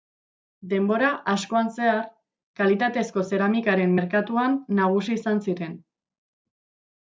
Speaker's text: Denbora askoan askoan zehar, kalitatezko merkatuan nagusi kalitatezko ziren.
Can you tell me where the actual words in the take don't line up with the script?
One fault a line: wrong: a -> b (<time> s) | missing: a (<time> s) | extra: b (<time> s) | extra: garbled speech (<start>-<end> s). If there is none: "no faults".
missing: askoan (1.7 s)
extra: zeramikaren (3.3 s)
wrong: kalitatezko -> izan (5.2 s)